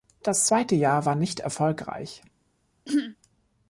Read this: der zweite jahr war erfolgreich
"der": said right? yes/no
no